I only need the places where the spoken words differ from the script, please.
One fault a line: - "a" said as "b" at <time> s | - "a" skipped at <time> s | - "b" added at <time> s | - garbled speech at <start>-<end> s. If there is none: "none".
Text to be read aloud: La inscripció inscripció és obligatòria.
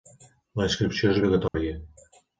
- "inscripció" skipped at 1.1 s